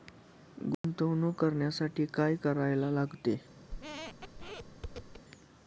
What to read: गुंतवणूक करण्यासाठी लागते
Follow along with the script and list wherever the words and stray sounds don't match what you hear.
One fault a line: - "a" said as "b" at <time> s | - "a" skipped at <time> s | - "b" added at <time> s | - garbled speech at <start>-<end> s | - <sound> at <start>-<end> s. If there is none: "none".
- dropout at 0.7-0.8 s
- "काय करायला" added at 2.1 s
- squeak at 3.7-5.2 s